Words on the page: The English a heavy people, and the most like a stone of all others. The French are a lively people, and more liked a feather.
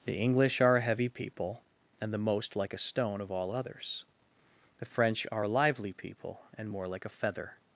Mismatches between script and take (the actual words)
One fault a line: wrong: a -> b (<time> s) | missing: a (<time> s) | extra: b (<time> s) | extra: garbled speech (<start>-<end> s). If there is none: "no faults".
extra: are (0.6 s)
wrong: liked -> like (6.9 s)